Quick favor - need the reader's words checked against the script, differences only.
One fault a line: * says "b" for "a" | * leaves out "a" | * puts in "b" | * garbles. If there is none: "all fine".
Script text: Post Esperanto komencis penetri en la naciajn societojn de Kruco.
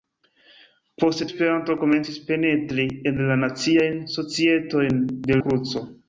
all fine